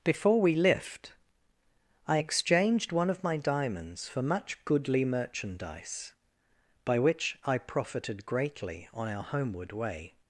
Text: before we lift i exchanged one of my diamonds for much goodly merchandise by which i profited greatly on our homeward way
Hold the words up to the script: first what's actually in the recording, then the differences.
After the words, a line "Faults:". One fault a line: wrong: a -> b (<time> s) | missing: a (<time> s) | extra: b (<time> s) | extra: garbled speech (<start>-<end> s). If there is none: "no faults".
before we lift i exchanged one of my diamonds for much goodly merchandise by which i profited greatly on our homeward way
Faults:
no faults